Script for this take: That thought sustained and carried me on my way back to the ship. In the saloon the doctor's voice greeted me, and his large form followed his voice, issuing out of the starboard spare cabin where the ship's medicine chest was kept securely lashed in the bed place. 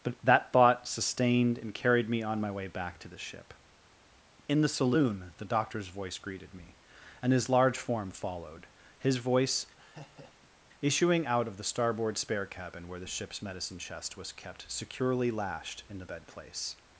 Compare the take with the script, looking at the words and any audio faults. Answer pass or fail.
fail